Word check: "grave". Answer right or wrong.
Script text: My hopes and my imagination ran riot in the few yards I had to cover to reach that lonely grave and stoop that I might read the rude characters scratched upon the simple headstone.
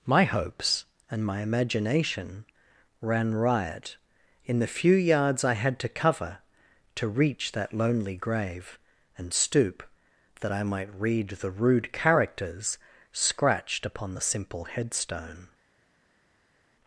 right